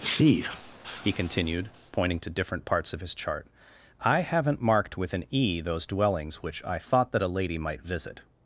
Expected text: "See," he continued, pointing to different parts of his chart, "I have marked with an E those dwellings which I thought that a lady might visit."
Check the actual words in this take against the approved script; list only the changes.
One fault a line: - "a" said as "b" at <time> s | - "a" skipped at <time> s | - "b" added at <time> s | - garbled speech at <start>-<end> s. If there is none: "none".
- "have" said as "haven't" at 4.2 s